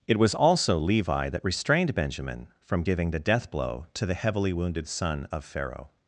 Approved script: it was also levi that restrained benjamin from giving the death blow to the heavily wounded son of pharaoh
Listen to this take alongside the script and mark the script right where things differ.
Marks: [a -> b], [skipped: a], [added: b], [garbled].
it was also levi that restrained benjamin from giving the death blow to the heavily wounded son of pharaoh